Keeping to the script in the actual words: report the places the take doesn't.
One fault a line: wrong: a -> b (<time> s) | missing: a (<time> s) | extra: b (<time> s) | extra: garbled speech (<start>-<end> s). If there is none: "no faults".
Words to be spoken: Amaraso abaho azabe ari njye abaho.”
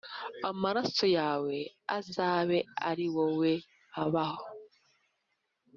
wrong: abaho -> yawe (1.2 s)
wrong: njye -> wowe (3.2 s)